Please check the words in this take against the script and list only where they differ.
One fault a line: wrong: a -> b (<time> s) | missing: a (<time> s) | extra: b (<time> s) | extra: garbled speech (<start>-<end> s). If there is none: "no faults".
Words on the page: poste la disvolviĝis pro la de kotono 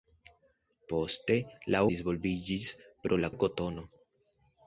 no faults